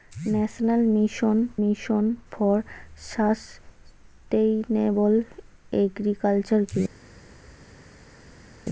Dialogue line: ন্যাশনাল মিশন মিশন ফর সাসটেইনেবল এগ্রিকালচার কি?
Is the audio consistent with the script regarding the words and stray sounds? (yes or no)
yes